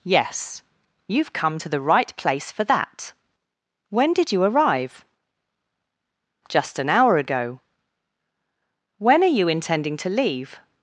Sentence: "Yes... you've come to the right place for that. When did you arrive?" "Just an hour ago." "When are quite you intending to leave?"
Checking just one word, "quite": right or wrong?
wrong